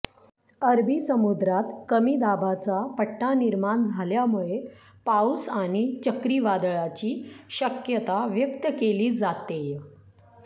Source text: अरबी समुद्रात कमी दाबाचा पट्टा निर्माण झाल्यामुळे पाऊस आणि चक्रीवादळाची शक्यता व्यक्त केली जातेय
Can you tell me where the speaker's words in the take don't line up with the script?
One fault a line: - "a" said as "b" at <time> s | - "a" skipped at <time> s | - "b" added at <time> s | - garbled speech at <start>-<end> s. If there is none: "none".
none